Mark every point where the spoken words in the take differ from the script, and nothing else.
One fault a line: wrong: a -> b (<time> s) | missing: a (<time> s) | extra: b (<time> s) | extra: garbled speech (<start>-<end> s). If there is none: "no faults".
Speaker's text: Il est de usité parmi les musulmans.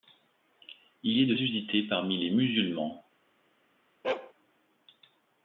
no faults